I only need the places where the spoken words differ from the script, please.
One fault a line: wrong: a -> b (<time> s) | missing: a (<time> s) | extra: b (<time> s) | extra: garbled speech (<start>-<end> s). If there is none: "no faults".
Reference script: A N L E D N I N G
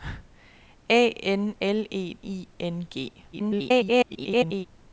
missing: D N (2.2 s)
extra: garbled speech (3.3-4.7 s)